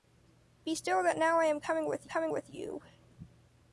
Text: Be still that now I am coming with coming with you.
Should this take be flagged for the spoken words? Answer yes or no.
no